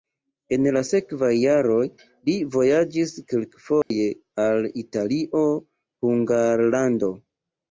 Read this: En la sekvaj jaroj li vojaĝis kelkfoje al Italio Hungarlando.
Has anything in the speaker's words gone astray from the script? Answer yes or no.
no